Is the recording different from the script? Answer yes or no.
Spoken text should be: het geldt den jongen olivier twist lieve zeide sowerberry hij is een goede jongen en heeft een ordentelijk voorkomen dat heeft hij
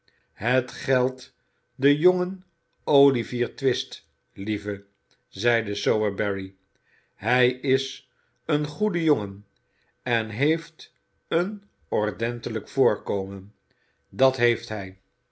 no